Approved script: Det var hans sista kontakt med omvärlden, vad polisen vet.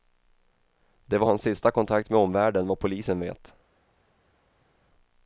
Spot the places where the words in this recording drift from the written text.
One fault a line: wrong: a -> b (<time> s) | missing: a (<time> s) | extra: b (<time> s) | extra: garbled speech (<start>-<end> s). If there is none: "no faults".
no faults